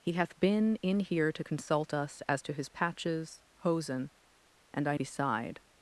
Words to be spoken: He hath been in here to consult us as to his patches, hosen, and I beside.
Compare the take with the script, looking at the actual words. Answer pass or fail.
pass